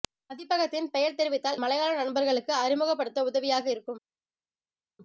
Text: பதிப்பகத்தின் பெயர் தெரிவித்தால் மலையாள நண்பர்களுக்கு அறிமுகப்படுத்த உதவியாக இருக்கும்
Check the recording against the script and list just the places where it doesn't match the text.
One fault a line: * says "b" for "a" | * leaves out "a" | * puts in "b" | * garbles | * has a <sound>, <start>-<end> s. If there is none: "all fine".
all fine